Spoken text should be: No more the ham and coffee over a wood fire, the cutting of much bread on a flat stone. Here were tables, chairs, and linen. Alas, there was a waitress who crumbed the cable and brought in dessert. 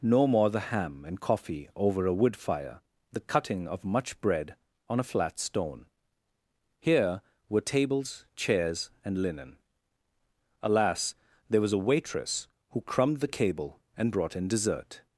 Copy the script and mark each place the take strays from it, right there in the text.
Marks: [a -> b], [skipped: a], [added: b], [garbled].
No more the ham and coffee over a wood fire, the cutting of much bread on a flat stone. Here were tables, chairs, and linen. Alas, there was a waitress who crumbed the cable and brought in dessert.